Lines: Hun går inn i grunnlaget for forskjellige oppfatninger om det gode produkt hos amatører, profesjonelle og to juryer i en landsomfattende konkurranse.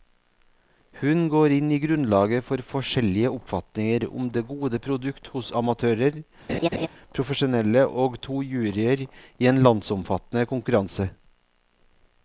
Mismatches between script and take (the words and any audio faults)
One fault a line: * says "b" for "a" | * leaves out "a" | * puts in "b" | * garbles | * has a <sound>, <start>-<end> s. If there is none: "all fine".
* has a laugh, 6.5-6.9 s